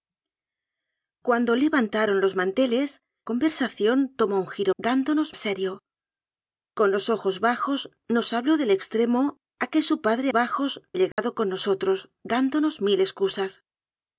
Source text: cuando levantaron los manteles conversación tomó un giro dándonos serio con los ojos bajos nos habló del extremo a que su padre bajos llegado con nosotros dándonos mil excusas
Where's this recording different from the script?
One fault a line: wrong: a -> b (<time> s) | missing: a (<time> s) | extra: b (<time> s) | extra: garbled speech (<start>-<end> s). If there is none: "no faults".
no faults